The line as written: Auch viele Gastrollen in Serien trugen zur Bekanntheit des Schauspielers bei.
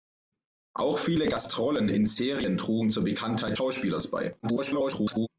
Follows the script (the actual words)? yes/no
no